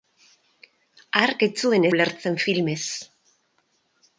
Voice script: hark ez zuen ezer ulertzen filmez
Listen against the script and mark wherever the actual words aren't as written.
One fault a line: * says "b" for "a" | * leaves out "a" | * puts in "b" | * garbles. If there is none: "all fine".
* leaves out "ezer"